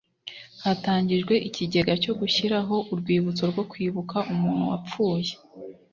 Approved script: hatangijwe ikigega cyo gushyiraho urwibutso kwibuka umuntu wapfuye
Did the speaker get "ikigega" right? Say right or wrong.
right